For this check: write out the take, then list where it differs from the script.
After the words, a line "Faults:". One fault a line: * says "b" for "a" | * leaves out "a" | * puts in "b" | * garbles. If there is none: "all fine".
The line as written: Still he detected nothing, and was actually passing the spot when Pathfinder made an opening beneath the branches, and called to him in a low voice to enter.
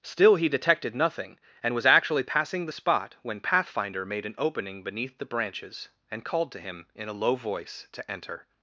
Still he detected nothing, and was actually passing the spot when Pathfinder made an opening beneath the branches, and called to him in a low voice to enter.
Faults:
all fine